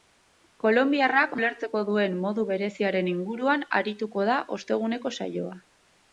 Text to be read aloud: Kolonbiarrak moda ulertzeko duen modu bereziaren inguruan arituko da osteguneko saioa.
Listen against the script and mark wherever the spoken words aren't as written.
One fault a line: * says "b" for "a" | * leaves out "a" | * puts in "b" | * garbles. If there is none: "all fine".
* leaves out "moda"